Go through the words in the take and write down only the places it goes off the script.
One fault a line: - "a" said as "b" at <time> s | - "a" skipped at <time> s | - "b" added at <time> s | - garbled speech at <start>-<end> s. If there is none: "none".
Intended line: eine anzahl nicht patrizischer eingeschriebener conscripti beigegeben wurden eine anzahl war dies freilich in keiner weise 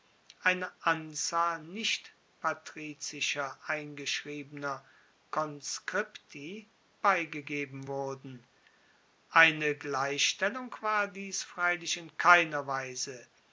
- "anzahl" said as "gleichstellung" at 9.8 s